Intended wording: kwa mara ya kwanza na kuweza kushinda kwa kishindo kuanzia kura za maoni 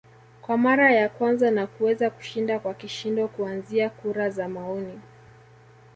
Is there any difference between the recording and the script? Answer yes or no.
no